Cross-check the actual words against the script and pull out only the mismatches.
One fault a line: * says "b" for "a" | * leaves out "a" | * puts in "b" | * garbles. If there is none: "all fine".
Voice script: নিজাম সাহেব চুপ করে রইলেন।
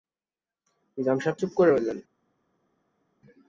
all fine